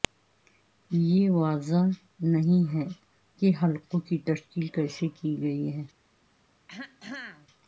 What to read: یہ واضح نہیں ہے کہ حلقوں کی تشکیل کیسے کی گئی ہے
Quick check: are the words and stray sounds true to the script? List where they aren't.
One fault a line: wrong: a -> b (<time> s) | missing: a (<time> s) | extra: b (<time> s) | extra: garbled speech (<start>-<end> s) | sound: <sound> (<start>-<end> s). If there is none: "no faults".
sound: throat clearing (6.7-7.5 s)